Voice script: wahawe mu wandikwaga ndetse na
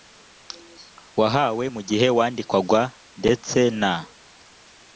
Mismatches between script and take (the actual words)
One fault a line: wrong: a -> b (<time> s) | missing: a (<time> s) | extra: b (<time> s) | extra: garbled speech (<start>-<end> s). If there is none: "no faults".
extra: gihe (1.9 s)